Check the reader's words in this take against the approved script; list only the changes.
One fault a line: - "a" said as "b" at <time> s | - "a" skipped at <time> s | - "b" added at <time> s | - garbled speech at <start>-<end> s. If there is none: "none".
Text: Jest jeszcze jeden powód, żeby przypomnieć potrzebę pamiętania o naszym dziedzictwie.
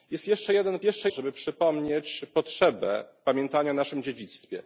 - "powód" said as "jeszcze" at 0.8 s